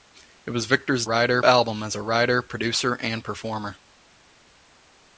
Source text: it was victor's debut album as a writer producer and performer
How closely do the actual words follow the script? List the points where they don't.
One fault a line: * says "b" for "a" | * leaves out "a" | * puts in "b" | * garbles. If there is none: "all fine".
* says "writer" for "debut"